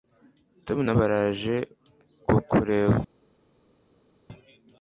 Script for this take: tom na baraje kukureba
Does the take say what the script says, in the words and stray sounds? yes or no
yes